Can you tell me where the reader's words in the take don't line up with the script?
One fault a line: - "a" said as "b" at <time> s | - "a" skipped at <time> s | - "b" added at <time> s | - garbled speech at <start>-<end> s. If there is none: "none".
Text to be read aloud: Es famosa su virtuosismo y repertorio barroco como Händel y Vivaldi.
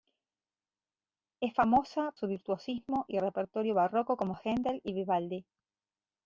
none